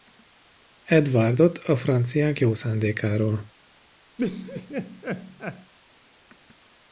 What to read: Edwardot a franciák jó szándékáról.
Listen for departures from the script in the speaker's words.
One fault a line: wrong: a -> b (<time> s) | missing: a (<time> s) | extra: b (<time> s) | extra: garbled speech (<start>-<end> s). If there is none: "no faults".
no faults